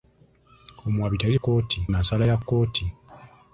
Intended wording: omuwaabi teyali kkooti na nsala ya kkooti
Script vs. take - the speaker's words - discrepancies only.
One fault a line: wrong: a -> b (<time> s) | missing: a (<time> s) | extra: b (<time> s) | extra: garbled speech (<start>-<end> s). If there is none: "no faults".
no faults